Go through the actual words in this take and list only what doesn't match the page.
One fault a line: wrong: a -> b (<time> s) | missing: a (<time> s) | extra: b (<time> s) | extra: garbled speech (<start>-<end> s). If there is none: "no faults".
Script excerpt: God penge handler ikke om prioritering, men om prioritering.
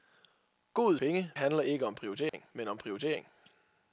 no faults